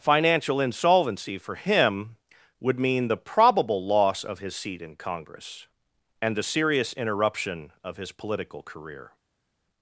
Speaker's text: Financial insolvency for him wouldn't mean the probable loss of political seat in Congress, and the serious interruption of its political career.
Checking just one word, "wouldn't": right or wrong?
wrong